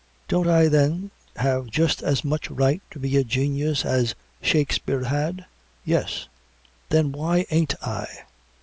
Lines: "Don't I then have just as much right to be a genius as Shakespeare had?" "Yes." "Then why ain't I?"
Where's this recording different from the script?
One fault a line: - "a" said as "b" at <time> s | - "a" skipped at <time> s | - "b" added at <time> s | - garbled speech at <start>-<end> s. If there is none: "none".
none